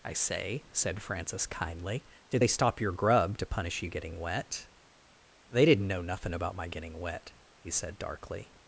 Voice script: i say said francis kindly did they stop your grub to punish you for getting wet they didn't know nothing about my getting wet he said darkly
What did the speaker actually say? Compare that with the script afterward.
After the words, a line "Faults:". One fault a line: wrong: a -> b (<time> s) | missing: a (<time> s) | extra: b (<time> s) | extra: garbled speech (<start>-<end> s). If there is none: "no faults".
i say said francis kindly did they stop your grub to punish you getting wet they didn't know nothing about my getting wet he said darkly
Faults:
missing: for (3.9 s)